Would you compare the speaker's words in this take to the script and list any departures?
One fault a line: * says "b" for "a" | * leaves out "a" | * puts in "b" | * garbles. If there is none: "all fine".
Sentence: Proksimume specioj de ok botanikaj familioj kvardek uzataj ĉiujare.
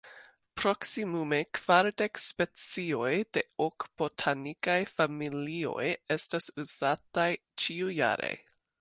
* puts in "kvardek"
* says "estas" for "kvardek"